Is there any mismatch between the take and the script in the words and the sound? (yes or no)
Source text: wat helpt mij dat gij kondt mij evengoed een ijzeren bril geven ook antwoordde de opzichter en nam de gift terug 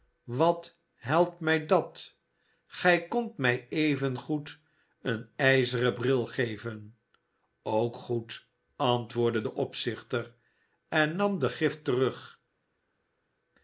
yes